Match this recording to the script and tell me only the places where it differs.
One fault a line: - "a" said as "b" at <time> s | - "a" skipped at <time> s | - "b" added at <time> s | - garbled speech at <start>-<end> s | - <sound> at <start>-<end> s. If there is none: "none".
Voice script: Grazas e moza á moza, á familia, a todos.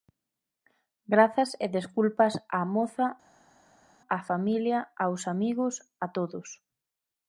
- "moza" said as "desculpas" at 1.8 s
- "aos amigos" added at 5.0 s